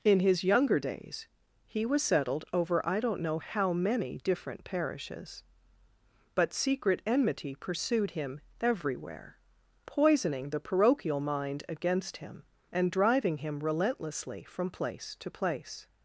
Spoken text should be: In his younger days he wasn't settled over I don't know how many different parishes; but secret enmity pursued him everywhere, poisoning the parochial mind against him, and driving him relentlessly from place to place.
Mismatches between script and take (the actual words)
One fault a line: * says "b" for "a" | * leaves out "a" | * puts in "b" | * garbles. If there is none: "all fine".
* says "was" for "wasn't"